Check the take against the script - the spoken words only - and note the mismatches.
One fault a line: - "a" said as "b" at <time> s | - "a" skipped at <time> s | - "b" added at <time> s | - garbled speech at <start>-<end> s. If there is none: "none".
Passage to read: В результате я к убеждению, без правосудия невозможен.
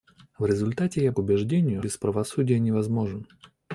none